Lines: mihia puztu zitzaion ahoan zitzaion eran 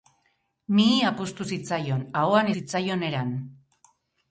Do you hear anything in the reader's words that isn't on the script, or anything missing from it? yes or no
no